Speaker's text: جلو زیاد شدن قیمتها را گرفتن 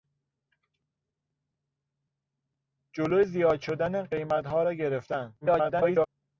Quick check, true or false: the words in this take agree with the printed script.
false